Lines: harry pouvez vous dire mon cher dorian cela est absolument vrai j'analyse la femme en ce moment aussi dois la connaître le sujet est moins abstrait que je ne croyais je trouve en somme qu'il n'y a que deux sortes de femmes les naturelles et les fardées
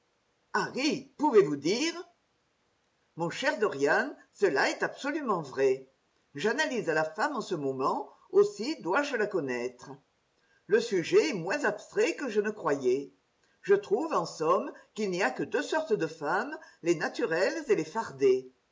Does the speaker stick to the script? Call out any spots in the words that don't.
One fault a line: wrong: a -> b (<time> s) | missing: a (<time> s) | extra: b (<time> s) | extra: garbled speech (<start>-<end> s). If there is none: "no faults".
extra: je (9.0 s)